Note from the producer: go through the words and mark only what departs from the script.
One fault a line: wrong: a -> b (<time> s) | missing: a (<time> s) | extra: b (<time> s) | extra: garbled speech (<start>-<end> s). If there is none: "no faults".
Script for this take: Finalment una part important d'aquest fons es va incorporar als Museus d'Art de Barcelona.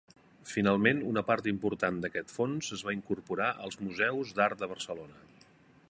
no faults